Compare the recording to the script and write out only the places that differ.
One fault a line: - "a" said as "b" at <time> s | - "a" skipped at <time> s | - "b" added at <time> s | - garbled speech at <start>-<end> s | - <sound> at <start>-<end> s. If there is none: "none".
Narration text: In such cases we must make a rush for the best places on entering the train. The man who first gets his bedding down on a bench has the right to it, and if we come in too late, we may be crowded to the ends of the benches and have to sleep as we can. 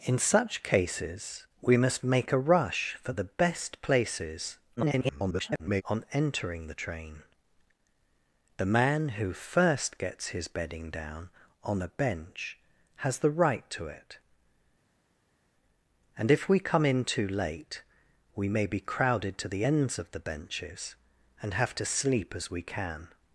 - garbled speech at 4.8-5.8 s